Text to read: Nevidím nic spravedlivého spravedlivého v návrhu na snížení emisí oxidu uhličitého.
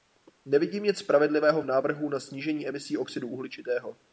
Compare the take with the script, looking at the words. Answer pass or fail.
fail